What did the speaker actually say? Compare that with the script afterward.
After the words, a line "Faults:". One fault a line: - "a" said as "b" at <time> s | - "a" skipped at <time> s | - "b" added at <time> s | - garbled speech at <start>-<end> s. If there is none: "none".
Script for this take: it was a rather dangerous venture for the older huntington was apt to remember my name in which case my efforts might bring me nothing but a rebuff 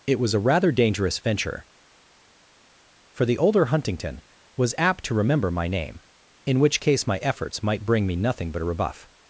it was a rather dangerous venture for the older huntington was apt to remember my name in which case my efforts might bring me nothing but a rebuff
Faults:
none